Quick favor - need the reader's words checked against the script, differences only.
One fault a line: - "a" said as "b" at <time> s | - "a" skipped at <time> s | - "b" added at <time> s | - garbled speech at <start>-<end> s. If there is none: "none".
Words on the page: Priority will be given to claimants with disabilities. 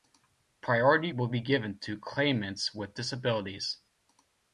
none